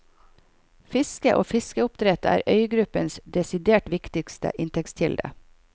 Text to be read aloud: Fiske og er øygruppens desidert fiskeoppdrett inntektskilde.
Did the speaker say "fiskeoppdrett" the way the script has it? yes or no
no